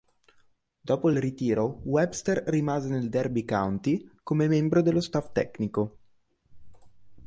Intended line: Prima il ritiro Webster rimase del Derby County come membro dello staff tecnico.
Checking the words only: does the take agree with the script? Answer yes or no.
no